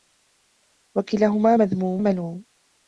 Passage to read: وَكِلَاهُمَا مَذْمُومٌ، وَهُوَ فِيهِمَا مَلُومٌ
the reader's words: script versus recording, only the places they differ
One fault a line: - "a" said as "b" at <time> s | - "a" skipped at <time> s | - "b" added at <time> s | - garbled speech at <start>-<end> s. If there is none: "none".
- "وَهُوَ فِيهِمَا" skipped at 2.0 s